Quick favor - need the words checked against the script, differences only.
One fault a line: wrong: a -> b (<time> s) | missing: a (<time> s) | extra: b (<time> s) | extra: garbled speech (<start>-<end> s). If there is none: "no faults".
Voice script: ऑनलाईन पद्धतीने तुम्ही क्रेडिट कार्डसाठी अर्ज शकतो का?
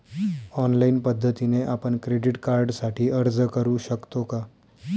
wrong: तुम्ही -> आपण (1.6 s)
extra: करु (3.5 s)